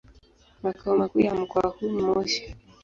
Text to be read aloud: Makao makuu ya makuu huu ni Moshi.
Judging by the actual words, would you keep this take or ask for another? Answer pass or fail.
fail